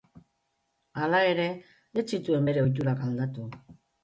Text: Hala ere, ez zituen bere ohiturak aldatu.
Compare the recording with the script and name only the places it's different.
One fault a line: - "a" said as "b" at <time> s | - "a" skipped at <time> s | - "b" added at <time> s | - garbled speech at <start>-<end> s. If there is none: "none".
none